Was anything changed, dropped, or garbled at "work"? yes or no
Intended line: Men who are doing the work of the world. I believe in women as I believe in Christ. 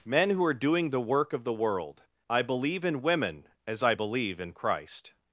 no